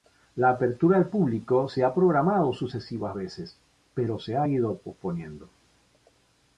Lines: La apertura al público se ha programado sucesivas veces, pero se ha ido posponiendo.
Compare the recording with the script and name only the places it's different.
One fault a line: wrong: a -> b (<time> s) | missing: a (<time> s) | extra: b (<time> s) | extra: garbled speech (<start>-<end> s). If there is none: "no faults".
no faults